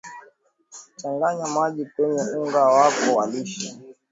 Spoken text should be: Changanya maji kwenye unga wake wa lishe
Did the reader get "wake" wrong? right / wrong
wrong